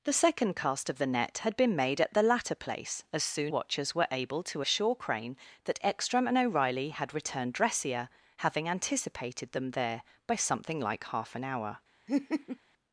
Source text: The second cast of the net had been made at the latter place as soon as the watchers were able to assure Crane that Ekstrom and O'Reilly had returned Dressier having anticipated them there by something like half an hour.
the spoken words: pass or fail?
fail